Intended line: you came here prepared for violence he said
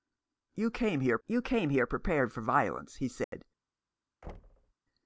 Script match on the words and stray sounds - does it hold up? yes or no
no